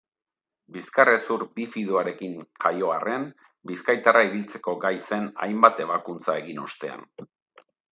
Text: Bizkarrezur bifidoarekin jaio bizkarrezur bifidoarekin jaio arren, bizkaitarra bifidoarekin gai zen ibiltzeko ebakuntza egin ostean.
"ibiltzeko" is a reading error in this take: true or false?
true